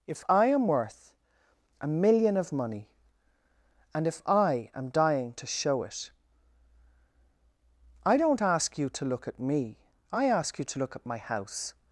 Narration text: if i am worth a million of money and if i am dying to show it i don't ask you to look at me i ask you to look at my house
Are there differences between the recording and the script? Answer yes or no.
no